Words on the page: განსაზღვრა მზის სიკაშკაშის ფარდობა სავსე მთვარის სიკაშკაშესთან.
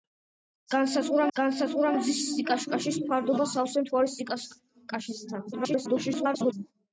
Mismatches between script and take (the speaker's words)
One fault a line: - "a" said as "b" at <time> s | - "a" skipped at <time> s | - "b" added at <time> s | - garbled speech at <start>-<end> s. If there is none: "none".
- "განსაზღვრა" added at 1.4 s
- garbled speech at 5.5-6.5 s